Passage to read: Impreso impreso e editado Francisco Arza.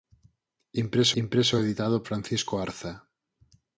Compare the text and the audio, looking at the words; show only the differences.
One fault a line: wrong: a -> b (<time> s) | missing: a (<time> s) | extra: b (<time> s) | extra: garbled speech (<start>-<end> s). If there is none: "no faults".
no faults